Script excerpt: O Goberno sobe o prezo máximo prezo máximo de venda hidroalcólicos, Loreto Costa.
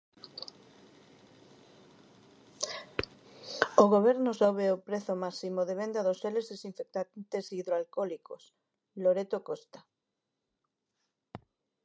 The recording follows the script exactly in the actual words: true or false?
false